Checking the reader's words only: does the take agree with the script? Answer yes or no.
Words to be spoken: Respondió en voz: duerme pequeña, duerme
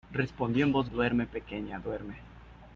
yes